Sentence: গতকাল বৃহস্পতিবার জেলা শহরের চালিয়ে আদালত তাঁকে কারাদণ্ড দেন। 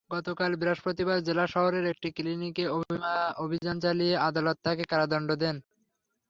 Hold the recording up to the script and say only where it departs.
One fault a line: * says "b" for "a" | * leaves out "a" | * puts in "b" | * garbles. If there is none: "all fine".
* puts in "একটি ক্লিনিকে অভিযান"